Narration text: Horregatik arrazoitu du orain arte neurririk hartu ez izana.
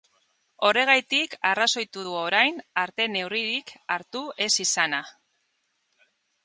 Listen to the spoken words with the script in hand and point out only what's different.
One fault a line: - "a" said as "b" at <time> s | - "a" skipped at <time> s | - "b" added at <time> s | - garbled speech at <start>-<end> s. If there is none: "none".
none